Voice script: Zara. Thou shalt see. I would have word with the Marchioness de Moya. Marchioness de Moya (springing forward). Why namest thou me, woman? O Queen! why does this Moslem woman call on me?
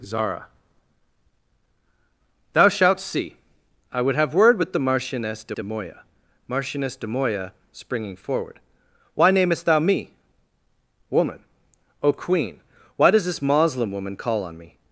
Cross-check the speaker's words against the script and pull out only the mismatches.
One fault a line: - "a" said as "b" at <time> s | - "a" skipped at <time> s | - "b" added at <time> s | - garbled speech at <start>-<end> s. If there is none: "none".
- "de" added at 5.5 s